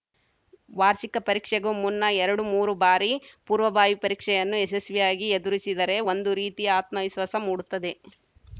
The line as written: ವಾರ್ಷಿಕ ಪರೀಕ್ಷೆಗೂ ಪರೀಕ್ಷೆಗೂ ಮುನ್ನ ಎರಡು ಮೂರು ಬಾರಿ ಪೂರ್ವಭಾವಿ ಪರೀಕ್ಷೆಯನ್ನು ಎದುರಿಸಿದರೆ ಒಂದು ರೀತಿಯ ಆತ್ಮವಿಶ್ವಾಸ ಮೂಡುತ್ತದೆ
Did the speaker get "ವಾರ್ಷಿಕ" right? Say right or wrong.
right